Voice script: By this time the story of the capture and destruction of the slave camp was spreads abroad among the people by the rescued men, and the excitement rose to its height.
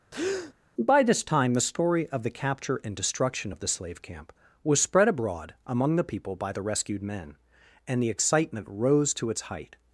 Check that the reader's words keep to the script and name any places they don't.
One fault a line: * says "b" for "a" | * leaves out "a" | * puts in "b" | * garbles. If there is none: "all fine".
* says "spread" for "spreads"